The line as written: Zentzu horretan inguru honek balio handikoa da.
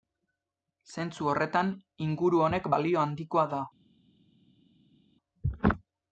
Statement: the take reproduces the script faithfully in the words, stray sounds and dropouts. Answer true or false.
true